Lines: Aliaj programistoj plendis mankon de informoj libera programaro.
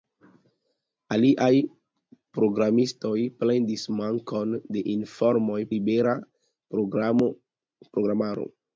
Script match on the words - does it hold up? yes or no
yes